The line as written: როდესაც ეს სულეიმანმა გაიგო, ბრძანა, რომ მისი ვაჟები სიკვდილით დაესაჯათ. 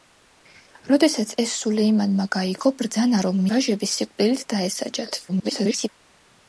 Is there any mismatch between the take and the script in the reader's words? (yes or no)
yes